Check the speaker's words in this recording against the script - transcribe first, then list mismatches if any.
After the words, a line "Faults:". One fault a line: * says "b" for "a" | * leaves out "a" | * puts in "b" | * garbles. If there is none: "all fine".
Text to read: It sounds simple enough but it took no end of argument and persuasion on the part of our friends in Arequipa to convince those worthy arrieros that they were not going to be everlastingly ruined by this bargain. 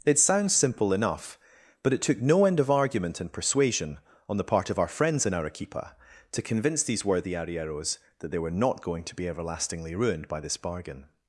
It sounds simple enough but it took no end of argument and persuasion on the part of our friends in Arequipa to convince these worthy arrieros that they were not going to be everlastingly ruined by this bargain.
Faults:
* says "these" for "those"